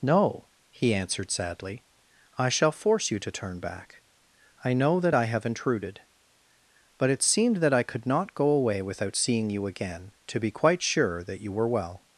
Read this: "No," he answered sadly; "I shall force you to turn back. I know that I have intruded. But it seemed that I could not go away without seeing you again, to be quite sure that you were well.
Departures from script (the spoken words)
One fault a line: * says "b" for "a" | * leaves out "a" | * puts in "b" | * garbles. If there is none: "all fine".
all fine